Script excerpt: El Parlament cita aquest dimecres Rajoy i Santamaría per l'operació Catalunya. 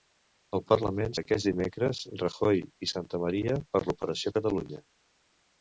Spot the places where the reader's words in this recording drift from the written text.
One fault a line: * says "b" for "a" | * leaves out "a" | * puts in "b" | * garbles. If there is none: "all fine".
* leaves out "cita"